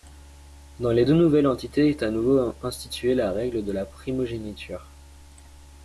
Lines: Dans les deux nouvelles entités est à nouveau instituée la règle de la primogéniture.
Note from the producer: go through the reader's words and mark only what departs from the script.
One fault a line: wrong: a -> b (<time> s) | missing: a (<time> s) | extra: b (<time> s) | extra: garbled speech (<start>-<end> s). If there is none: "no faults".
no faults